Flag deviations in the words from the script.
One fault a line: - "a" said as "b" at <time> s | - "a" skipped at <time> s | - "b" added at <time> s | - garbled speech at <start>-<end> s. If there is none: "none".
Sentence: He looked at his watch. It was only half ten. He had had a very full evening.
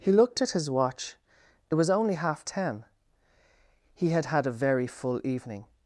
none